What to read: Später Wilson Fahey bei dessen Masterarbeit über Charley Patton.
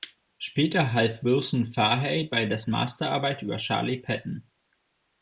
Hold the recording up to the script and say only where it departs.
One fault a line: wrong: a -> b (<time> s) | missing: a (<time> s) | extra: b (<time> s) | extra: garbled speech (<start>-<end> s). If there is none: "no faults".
extra: half (0.9 s)